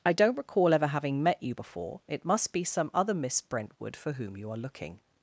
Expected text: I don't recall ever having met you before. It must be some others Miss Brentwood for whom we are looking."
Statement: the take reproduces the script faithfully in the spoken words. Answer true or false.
false